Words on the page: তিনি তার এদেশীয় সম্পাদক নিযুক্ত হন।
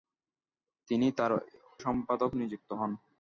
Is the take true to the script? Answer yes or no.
no